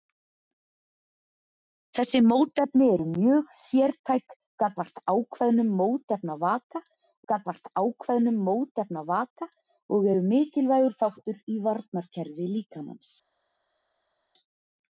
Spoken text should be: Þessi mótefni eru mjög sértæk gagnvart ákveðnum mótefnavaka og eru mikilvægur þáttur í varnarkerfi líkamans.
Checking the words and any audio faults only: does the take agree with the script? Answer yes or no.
no